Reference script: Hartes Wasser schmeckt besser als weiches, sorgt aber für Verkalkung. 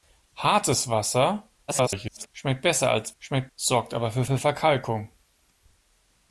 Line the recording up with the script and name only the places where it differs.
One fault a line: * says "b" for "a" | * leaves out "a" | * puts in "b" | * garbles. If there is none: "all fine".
* garbles
* says "schmeckt" for "weiches"
* puts in "für"